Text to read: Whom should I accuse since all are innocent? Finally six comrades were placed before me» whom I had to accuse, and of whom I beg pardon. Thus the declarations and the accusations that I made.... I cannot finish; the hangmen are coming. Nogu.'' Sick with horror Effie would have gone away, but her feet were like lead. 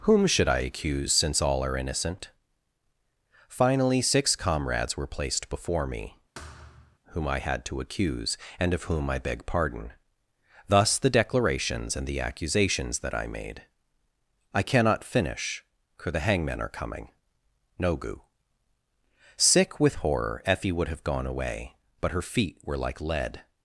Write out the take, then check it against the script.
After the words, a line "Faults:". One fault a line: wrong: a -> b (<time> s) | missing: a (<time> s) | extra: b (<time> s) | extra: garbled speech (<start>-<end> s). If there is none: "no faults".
Whom should I accuse since all are innocent? Finally six comrades were placed before me» whom I had to accuse, and of whom I beg pardon. Thus the declarations and the accusations that I made.... I cannot finish; for the hangmen are coming. Nogu.'' Sick with horror Effie would have gone away, but her feet were like lead.
Faults:
extra: for (16.0 s)